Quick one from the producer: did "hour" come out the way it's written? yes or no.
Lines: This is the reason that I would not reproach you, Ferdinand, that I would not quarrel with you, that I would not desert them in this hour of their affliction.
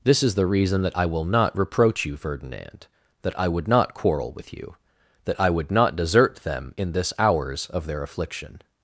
no